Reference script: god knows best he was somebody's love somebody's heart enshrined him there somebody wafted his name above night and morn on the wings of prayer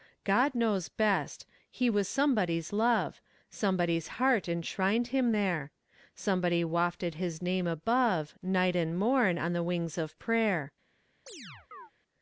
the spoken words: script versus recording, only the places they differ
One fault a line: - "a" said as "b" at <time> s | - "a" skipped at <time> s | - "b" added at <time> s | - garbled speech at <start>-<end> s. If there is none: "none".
none